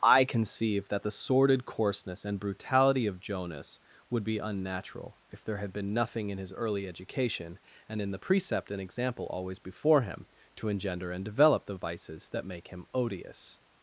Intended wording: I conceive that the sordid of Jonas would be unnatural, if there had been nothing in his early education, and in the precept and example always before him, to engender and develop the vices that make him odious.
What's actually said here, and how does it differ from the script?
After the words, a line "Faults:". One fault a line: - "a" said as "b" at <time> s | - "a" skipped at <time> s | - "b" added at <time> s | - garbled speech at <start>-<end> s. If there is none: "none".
I conceive that the sordid coarseness and brutality of Jonas would be unnatural, if there had been nothing in his early education, and in the precept and example always before him, to engender and develop the vices that make him odious.
Faults:
- "coarseness and brutality" added at 1.6 s